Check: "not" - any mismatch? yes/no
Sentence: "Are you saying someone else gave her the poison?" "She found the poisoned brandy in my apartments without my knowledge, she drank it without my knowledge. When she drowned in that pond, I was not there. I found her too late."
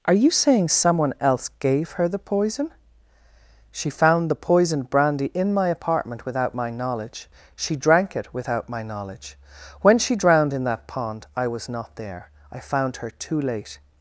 no